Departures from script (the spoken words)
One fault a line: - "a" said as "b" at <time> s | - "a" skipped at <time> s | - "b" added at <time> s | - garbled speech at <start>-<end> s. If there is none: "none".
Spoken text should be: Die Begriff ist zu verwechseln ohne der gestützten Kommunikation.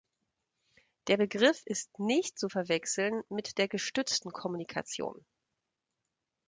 - "Die" said as "Der" at 1.1 s
- "nicht" added at 2.0 s
- "ohne" said as "mit" at 3.3 s